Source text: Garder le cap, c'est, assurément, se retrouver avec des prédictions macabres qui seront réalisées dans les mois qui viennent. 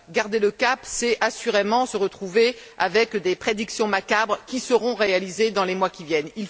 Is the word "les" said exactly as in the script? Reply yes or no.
yes